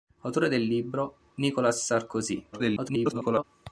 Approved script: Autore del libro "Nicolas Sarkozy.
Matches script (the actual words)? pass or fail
fail